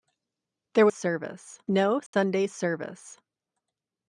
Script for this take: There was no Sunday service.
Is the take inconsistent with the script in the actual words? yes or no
yes